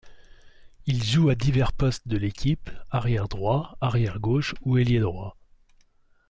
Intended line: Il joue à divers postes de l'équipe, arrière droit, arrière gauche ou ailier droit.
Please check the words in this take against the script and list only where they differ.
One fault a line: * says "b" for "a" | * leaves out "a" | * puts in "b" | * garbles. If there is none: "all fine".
all fine